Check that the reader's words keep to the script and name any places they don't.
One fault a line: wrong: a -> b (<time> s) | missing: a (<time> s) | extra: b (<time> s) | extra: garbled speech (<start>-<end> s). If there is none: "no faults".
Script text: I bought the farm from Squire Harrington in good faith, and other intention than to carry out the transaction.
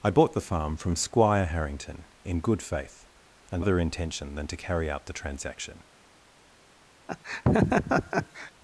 no faults